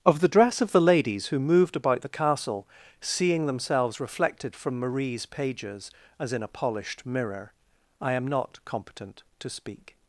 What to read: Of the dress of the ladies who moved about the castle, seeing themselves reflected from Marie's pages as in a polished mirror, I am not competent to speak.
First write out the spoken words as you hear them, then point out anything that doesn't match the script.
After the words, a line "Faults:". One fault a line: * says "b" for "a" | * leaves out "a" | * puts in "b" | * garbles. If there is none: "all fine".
Of the dress of the ladies who moved about the castle, seeing themselves reflected from Marie's pages as in a polished mirror, I am not competent to speak.
Faults:
all fine